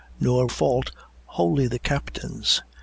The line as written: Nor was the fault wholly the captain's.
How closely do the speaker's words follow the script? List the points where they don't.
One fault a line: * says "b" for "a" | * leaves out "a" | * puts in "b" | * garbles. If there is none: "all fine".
* leaves out "was the"